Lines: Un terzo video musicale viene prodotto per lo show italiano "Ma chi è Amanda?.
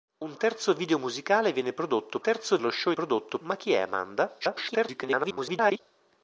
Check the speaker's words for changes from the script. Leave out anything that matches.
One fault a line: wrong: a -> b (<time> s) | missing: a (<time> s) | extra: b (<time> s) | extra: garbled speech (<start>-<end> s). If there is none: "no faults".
wrong: per -> terzo (2.2 s)
wrong: italiano -> prodotto (2.9 s)
extra: garbled speech (4.4-5.8 s)